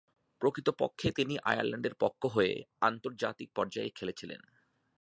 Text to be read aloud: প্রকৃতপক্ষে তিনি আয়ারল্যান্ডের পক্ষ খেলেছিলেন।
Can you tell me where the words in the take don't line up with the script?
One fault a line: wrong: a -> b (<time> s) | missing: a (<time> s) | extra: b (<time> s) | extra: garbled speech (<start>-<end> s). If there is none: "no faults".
extra: হয়ে আন্তর্জাতিক পর্যায়ে (2.2 s)